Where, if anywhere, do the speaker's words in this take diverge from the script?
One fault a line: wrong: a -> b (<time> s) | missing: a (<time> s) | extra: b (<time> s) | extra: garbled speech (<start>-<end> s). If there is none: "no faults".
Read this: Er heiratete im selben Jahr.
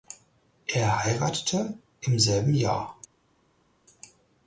no faults